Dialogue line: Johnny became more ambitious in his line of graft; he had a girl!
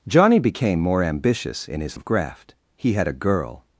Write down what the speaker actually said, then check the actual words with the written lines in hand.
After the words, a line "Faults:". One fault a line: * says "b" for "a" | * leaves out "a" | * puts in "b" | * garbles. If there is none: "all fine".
Johnny became more ambitious in his of graft; he had a girl!
Faults:
* leaves out "line"